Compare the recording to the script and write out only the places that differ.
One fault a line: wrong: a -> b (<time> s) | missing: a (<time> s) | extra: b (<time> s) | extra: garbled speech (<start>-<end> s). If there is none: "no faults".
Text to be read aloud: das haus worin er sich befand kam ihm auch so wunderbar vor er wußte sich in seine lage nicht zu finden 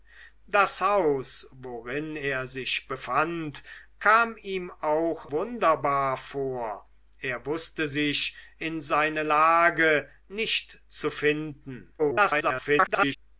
missing: so (5.3 s)
extra: garbled speech (12.0-13.2 s)